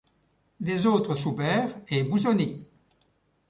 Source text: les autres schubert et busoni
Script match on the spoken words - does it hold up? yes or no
yes